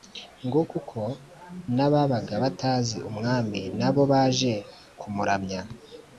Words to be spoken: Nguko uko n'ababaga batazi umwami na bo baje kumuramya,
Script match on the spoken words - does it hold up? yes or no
yes